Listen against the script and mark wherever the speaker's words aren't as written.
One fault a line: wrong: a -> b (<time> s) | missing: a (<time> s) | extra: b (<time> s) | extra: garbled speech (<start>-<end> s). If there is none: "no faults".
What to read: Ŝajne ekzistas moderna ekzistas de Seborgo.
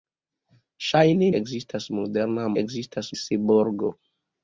no faults